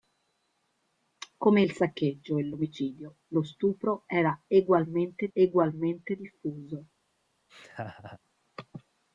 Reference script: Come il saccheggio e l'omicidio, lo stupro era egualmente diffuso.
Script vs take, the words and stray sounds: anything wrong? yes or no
yes